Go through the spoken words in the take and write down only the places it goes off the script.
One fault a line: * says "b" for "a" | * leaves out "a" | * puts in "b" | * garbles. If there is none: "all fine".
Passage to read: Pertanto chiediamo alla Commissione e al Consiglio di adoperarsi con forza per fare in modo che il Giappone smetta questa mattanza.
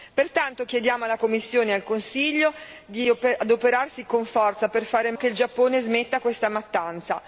* leaves out "modo"